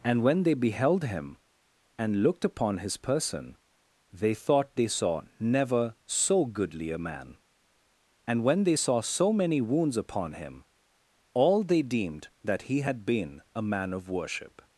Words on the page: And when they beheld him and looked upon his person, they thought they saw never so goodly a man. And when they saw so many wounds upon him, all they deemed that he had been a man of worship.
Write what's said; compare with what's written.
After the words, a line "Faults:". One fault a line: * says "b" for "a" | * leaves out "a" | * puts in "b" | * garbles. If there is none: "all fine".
And when they beheld him and looked upon his person, they thought they saw never so goodly a man. And when they saw so many wounds upon him, all they deemed that he had been a man of worship.
Faults:
all fine